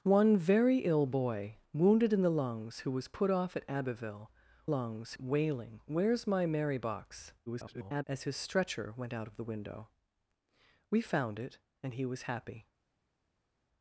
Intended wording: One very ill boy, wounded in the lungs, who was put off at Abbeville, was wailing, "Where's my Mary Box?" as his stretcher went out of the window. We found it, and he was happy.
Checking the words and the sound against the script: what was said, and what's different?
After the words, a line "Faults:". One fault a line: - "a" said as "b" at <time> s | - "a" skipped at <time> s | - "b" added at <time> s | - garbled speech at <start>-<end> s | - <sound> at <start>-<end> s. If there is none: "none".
One very ill boy, wounded in the lungs, who was put off at Abbeville, lungs wailing, "Where's my Mary Box?" [garbled] as his stretcher went out of the window. We found it, and he was happy.
Faults:
- "was" said as "lungs" at 4.7 s
- garbled speech at 7.5-8.0 s